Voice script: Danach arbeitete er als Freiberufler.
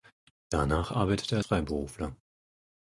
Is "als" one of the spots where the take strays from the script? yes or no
yes